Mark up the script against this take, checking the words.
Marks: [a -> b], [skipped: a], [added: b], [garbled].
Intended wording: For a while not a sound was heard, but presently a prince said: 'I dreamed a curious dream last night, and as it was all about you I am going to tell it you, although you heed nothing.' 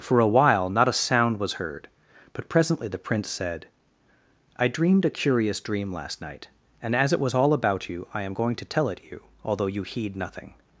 For a while not a sound was heard, but presently [a -> the] prince said: 'I dreamed a curious dream last night, and as it was all about you I am going to tell it you, although you heed nothing.'